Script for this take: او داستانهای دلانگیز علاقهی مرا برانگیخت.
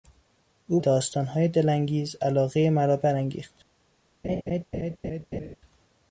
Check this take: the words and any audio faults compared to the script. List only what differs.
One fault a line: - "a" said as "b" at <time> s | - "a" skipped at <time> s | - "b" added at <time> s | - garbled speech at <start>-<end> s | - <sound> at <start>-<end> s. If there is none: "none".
- laugh at 4.2-5.6 s